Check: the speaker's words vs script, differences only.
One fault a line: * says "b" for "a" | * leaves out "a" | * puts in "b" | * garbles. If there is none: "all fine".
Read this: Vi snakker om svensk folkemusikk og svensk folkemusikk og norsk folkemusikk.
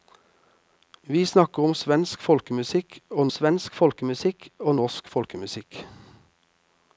all fine